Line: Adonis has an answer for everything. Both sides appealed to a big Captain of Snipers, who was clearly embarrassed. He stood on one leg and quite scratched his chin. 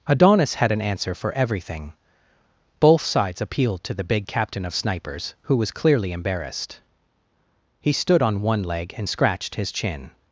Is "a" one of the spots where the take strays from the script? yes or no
yes